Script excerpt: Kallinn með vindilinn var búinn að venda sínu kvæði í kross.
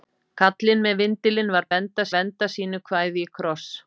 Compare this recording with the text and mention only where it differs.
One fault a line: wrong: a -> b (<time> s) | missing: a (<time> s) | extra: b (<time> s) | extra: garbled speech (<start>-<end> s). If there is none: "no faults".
wrong: búinn -> venda (1.7 s)